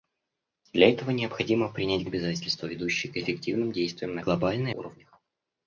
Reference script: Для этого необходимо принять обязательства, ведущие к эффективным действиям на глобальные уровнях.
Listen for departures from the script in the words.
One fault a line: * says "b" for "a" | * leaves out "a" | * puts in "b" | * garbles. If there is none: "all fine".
all fine